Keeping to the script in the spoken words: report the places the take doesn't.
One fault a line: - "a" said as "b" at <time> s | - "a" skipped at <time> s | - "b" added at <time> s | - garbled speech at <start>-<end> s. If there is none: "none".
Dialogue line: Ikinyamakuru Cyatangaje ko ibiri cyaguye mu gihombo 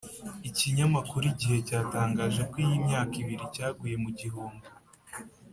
- "Igihe" added at 1.3 s
- "iyi myaka" added at 2.6 s